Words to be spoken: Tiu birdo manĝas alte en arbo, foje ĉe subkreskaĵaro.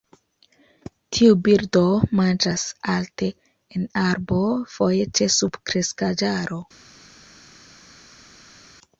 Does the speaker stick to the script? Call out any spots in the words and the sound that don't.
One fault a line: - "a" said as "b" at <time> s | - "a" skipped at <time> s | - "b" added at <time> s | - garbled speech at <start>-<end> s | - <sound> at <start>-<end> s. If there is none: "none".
none